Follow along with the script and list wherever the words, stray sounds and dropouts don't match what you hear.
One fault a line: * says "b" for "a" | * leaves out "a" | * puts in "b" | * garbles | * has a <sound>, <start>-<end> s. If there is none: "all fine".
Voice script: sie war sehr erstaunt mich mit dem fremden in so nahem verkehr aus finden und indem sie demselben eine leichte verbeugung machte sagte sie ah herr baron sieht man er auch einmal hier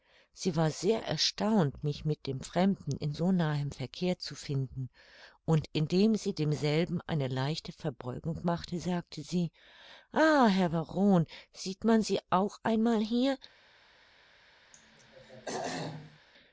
* says "zu" for "aus"
* says "sie" for "er"
* has a throat clearing, 14.7-16.2 s